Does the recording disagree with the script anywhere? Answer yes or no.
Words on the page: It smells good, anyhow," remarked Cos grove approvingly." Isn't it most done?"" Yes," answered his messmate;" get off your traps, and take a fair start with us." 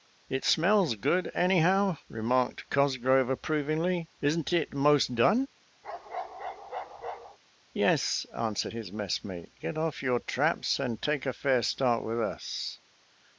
no